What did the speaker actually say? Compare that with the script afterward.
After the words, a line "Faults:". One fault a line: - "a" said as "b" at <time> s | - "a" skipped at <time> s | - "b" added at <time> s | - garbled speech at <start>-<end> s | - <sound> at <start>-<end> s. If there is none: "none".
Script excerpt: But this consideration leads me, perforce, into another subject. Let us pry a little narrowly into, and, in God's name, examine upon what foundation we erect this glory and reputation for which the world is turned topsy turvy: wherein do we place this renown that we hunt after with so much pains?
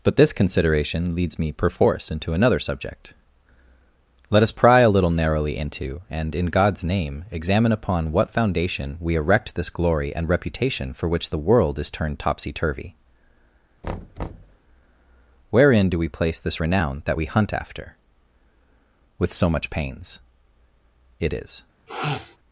But this consideration leads me, perforce, into another subject. Let us pry a little narrowly into, and, in God's name, examine upon what foundation we erect this glory and reputation for which the world is turned topsy turvy: wherein do we place this renown that we hunt after with so much pains? It is
Faults:
- thud at 13.8-14.6 s
- "It is" added at 21.2 s
- sniff at 21.9-22.4 s